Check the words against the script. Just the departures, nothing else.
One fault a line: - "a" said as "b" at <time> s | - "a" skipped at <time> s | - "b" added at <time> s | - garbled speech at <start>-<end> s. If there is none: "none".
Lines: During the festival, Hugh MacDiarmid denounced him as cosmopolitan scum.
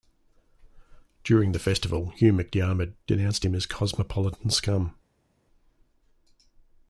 none